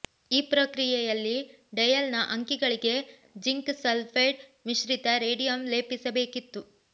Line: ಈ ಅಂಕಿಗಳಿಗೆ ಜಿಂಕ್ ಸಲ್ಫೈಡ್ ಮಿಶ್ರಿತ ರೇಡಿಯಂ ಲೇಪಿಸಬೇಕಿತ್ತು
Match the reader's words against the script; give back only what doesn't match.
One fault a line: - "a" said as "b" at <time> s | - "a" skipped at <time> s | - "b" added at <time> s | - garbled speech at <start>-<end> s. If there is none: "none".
- "ಪ್ರಕ್ರಿಯೆಯಲ್ಲಿ ಡಯಲ್ನ" added at 0.5 s